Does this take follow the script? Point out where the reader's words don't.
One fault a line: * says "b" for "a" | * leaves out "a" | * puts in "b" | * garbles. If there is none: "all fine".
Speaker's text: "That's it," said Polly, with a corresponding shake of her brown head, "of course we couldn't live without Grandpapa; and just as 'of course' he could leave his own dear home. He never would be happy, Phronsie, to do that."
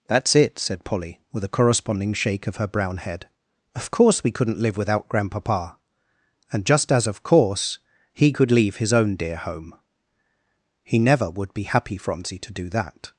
all fine